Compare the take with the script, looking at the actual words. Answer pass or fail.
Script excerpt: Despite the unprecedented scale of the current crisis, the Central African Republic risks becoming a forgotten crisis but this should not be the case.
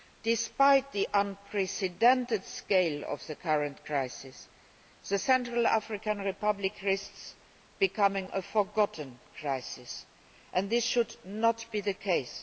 fail